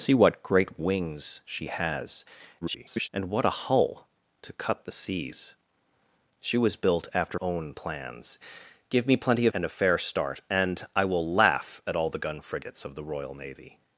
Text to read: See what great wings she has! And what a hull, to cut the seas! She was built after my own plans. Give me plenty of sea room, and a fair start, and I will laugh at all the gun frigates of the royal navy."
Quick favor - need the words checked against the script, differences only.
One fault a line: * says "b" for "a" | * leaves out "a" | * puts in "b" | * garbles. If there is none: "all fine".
* garbles
* leaves out "my"
* leaves out "sea room"